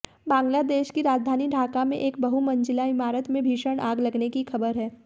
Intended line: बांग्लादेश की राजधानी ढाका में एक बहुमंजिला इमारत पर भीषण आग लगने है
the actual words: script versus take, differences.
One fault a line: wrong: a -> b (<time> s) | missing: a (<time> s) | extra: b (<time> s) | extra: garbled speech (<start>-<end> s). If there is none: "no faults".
wrong: पर -> में (3.3 s)
extra: की खबर (4.3 s)